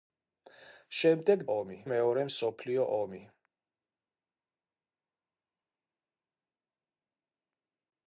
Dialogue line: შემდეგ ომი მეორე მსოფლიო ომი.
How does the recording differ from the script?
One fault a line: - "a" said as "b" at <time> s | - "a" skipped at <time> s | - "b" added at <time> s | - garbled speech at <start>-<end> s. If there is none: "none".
none